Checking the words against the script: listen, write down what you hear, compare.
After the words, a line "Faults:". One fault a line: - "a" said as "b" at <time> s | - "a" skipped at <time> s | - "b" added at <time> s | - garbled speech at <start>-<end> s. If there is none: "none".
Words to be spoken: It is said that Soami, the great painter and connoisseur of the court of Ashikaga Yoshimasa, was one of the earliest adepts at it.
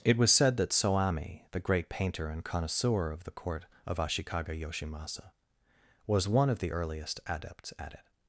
It was said that Soami, the great painter and connoisseur of the court of Ashikaga Yoshimasa, was one of the earliest adepts at it.
Faults:
- "is" said as "was" at 0.2 s